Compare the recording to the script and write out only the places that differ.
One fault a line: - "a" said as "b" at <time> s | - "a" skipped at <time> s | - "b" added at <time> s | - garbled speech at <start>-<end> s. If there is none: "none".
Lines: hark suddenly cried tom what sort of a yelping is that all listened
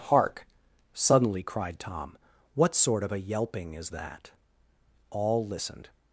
none